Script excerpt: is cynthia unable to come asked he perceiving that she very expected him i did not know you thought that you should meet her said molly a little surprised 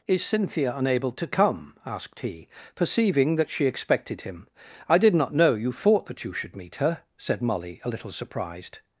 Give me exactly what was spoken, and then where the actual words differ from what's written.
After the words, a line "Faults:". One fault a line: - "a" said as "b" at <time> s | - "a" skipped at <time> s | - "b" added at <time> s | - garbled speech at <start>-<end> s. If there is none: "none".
is cynthia unable to come asked he perceiving that she expected him i did not know you thought that you should meet her said molly a little surprised
Faults:
- "very" skipped at 3.6 s